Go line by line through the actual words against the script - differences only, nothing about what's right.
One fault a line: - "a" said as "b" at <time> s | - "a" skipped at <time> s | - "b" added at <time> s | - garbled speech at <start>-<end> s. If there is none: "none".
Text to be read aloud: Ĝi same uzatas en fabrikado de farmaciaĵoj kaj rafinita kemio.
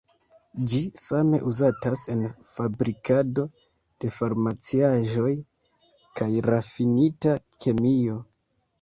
none